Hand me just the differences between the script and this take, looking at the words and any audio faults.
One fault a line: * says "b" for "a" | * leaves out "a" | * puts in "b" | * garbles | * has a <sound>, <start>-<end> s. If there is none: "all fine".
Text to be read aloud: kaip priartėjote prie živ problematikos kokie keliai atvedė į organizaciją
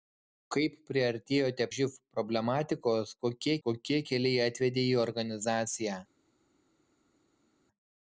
* leaves out "prie"
* puts in "kokie"